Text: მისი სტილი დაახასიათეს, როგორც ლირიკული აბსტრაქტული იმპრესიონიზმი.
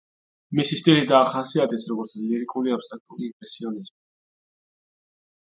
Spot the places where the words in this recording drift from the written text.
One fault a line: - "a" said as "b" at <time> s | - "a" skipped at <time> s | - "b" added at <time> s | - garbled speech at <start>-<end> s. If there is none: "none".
none